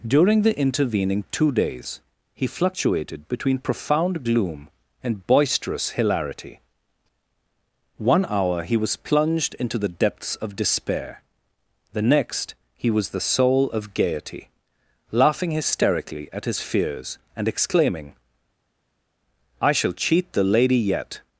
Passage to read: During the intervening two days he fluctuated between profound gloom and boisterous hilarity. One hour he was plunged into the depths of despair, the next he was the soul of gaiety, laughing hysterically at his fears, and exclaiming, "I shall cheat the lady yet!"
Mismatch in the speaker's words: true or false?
false